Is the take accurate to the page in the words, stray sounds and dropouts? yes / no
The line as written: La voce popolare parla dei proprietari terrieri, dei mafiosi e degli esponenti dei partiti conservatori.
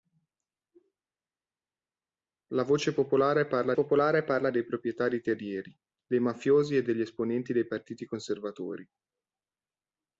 no